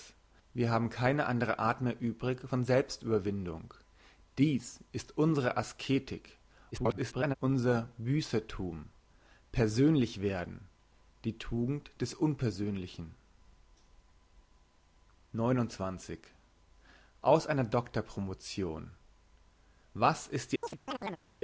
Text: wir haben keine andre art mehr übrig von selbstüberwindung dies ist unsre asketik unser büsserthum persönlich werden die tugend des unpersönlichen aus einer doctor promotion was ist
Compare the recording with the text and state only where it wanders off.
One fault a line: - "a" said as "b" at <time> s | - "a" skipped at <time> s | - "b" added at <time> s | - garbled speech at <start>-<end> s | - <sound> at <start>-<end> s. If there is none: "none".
- garbled speech at 6.7-7.4 s
- chirp at 20.6-21.2 s